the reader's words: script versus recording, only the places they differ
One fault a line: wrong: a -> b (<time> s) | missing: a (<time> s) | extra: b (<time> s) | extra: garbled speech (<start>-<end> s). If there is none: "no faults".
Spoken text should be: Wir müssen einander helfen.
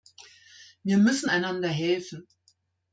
no faults